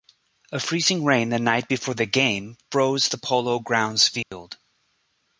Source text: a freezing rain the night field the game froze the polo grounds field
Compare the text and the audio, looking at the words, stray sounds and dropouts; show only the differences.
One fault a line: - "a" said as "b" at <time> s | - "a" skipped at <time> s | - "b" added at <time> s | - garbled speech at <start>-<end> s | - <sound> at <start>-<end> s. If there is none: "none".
- "field" said as "before" at 1.7 s
- dropout at 4.2-4.3 s